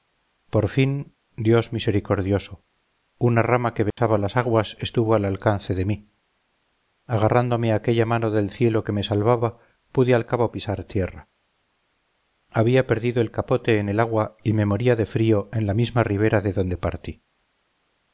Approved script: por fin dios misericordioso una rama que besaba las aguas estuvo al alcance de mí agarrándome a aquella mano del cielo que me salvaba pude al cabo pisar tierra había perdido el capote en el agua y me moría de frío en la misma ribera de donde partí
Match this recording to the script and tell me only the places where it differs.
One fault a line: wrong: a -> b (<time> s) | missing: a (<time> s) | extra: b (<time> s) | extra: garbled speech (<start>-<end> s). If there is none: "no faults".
no faults